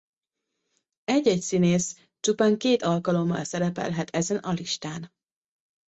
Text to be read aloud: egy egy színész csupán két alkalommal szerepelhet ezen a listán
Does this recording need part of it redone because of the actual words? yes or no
no